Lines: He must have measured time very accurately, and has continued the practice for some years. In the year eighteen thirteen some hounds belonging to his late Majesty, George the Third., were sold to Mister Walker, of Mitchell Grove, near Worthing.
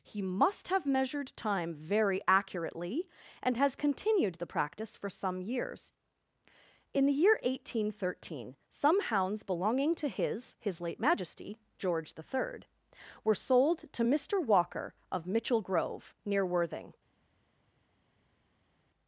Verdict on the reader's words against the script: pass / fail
fail